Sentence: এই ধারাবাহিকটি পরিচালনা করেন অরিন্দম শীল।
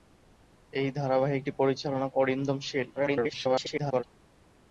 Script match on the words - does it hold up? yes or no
no